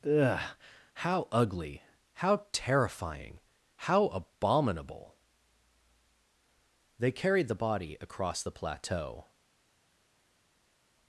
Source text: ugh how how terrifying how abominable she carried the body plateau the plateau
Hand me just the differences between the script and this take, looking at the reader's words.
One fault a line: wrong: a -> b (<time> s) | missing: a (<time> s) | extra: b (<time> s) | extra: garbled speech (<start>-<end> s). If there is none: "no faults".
extra: ugly (1.3 s)
wrong: she -> they (7.0 s)
wrong: plateau -> across (8.0 s)